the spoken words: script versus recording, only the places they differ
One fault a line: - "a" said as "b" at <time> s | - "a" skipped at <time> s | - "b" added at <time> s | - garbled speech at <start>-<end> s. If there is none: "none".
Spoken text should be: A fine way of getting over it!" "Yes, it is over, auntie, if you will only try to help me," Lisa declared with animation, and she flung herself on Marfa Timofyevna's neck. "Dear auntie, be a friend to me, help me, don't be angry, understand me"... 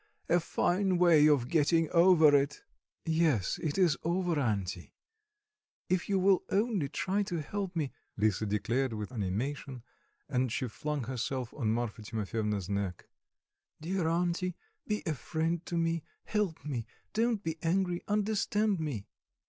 none